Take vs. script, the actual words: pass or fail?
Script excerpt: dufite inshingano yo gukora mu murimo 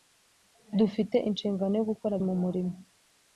pass